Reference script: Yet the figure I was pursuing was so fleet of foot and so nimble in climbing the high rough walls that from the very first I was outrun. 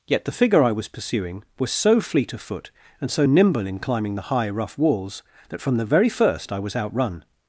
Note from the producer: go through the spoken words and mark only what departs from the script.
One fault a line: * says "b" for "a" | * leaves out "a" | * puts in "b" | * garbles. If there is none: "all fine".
all fine